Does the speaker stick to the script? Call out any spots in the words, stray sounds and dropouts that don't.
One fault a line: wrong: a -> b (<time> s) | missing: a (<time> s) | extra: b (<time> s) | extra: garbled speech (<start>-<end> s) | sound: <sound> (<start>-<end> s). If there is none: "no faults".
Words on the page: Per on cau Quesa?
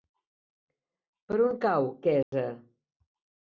sound: dropout (2.2-2.3 s)